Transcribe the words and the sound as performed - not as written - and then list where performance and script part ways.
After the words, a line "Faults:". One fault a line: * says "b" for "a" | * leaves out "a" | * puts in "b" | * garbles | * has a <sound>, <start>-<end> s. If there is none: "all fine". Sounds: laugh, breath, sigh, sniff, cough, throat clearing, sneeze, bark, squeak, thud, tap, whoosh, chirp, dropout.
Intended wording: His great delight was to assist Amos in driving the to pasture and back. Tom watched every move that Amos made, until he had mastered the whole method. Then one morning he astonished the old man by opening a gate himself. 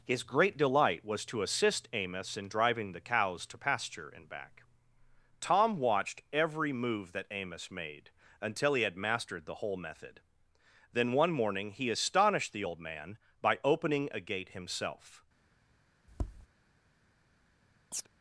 His great delight was to assist Amos in driving the cows to pasture and back. Tom watched every move that Amos made, until he had mastered the whole method. Then one morning he astonished the old man by opening a gate himself.
Faults:
* puts in "cows"
* has a tap, 16.1-16.5 s
* has a chirp, 17.9-18.1 s